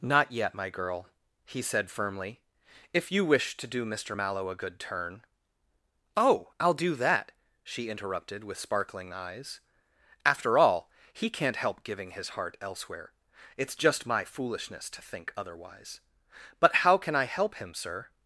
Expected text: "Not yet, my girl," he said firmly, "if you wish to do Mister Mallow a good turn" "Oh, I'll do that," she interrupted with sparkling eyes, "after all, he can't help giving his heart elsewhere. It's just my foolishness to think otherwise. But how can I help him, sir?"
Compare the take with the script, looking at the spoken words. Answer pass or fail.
pass